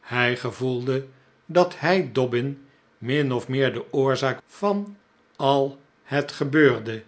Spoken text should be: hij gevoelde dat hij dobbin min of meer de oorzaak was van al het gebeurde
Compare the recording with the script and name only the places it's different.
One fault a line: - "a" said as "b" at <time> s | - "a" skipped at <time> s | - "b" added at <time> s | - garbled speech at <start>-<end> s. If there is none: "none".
- "was" skipped at 4.4 s